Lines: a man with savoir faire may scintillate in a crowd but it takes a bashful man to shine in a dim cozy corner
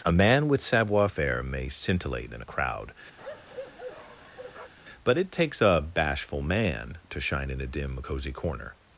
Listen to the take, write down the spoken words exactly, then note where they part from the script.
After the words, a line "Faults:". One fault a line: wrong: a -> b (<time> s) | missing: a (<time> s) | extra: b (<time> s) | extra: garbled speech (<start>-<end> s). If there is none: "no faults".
a man with savoir faire may scintillate in a crowd but it takes a bashful man to shine in a dim cozy corner
Faults:
no faults